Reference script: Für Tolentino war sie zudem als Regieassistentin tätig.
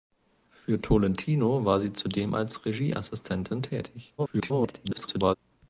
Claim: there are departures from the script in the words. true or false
true